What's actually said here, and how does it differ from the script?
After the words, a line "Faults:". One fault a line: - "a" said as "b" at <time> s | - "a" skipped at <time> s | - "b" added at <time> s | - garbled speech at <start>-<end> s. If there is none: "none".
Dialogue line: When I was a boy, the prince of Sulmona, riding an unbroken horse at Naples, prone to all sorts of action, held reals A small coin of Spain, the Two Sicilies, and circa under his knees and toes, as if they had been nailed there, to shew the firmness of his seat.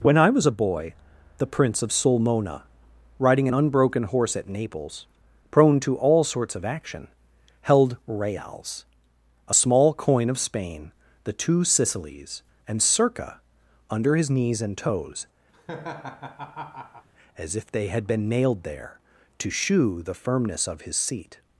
When I was a boy, the prince of Sulmona, riding an unbroken horse at Naples, prone to all sorts of action, held reals A small coin of Spain, the Two Sicilies, and circa under his knees and toes, as if they had been nailed there, to shew the firmness of his seat.
Faults:
none